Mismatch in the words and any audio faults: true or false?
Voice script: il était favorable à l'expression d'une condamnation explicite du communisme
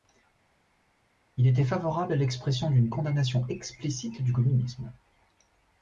false